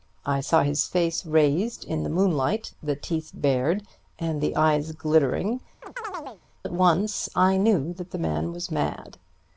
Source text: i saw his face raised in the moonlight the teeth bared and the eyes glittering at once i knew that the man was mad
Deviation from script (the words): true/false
false